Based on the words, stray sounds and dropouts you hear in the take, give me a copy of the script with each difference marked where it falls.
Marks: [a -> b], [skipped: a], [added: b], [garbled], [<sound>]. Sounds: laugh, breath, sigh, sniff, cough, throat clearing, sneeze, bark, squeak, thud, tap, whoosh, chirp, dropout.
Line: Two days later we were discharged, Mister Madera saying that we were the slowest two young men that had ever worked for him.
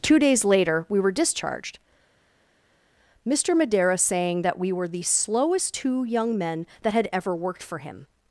Two days later we were discharged, Mister Madera saying that we were the slowest two young men that had ever worked for him.